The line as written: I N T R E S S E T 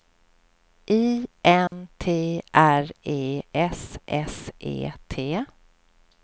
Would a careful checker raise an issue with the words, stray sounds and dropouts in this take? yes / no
yes